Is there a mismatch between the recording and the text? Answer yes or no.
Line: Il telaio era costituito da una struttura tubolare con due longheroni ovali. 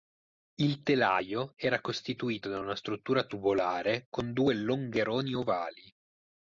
no